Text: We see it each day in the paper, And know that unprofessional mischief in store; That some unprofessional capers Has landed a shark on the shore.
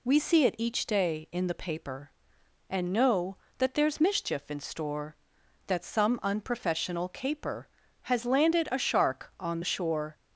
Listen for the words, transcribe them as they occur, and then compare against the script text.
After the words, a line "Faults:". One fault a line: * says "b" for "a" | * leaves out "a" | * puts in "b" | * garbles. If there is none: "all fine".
We see it each day in the paper, And know that there's mischief in store; That some unprofessional caper Has landed a shark on the shore.
Faults:
* says "there's" for "unprofessional"
* says "caper" for "capers"